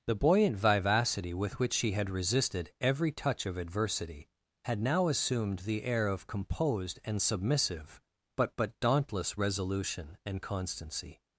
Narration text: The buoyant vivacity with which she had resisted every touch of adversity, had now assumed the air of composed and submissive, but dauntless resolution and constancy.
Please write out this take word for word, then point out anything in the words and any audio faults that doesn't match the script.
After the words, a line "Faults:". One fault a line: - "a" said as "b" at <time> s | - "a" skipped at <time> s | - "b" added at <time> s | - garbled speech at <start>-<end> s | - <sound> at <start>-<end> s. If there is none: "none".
The buoyant vivacity with which she had resisted every touch of adversity, had now assumed the air of composed and submissive, but but dauntless resolution and constancy.
Faults:
- "but" added at 8.6 s